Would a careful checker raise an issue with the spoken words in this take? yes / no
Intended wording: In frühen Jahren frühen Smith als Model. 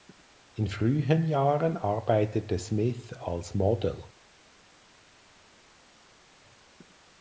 yes